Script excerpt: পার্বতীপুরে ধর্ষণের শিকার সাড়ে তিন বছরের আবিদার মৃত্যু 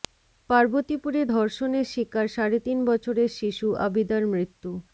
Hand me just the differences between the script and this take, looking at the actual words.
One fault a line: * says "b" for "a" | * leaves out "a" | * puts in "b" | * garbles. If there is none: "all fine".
* puts in "শিশু"